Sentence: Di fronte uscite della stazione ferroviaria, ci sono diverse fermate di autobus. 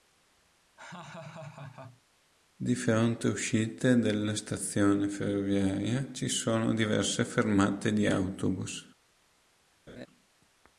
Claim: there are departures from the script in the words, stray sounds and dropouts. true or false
true